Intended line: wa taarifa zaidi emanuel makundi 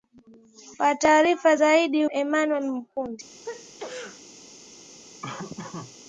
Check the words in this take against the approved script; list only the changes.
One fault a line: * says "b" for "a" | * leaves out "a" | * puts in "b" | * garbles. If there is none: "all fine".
all fine